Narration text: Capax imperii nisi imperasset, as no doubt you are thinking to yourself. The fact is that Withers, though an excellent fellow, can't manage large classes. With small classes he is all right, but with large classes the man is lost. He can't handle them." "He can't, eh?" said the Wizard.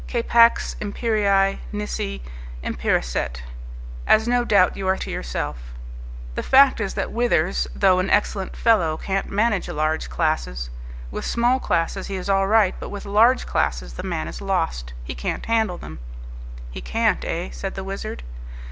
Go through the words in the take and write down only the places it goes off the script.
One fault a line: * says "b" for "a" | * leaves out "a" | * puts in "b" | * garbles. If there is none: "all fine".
* leaves out "thinking"